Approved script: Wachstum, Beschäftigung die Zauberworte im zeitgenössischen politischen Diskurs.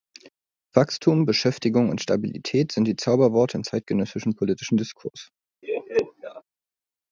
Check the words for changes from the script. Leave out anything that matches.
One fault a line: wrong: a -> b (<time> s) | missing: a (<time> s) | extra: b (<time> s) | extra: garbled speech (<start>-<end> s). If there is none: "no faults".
extra: und Stabilität sind (1.9 s)